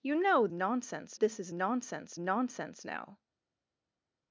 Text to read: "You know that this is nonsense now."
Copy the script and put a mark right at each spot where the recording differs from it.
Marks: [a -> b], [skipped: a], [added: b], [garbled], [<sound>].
"You know [that -> nonsense] this is nonsense [added: nonsense] now."